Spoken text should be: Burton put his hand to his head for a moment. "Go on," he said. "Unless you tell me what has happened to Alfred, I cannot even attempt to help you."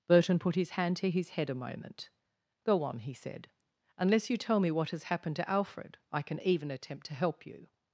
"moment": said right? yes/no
yes